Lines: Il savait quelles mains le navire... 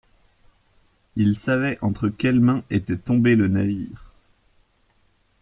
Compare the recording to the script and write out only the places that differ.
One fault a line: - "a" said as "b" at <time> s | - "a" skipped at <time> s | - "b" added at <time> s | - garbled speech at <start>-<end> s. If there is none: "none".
- "entre" added at 1.8 s
- "était tombé" added at 2.7 s